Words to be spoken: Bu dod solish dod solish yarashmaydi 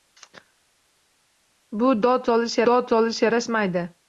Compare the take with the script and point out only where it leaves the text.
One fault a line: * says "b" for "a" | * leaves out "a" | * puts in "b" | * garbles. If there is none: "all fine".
all fine